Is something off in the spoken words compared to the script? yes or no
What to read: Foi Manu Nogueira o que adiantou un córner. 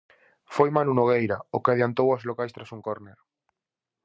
yes